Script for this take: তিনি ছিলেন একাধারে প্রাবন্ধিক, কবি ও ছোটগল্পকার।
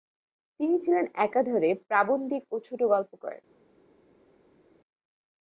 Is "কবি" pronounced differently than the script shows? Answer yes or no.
yes